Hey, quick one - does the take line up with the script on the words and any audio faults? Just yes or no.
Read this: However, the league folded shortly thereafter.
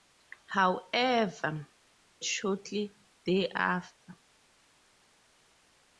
no